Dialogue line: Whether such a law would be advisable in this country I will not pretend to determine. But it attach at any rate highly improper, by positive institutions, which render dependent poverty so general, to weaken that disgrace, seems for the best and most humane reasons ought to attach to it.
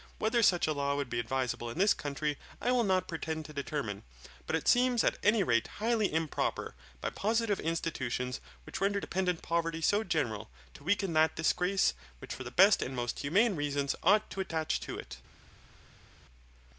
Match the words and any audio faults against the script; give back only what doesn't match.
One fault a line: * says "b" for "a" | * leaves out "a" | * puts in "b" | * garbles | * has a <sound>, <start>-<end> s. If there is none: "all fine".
* says "seems" for "attach"
* says "which" for "seems"